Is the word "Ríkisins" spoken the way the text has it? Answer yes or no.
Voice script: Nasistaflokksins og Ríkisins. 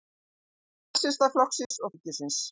yes